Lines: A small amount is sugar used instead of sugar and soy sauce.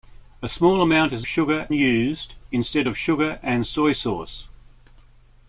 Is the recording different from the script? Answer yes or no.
no